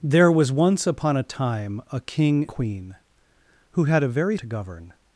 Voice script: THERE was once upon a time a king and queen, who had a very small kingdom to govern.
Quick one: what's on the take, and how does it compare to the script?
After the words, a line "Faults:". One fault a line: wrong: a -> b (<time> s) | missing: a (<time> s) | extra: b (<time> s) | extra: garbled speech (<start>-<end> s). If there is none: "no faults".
THERE was once upon a time a king queen, who had a very to govern.
Faults:
missing: and (2.5 s)
missing: small kingdom (4.4 s)